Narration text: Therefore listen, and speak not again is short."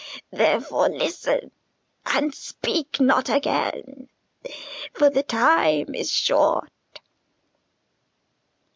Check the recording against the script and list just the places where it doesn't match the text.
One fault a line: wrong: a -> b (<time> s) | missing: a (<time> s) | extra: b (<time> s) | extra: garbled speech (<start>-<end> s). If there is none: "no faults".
extra: for the time (4.9 s)